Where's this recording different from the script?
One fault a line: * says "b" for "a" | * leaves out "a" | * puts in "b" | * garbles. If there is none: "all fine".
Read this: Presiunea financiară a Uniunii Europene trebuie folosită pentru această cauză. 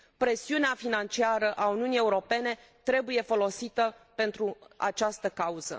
all fine